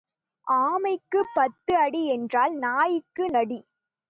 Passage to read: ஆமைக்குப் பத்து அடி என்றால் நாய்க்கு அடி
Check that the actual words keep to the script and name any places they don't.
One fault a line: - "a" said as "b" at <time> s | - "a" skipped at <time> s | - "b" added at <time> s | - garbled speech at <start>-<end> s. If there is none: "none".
none